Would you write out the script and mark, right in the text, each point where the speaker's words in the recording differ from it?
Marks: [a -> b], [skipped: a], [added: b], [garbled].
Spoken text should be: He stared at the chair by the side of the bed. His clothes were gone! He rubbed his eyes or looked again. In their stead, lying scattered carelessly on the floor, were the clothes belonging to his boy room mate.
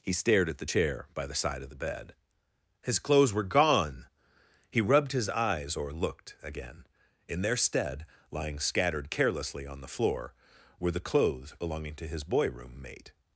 He stared at the chair by the side of the bed. His clothes were gone! He rubbed his eyes or looked again. In their stead, lying scattered carelessly on the floor, were the clothes belonging to his boy room mate.